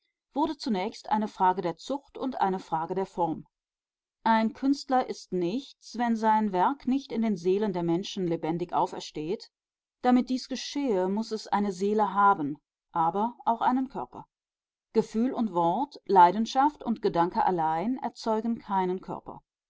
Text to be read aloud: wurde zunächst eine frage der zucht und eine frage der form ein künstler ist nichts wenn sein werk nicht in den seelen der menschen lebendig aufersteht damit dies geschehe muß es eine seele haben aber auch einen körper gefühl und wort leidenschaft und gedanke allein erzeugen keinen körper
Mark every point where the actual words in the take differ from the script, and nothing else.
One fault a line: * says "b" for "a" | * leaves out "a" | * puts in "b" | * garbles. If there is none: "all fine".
all fine